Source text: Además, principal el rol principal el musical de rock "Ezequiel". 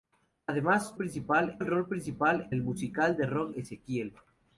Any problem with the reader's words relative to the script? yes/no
no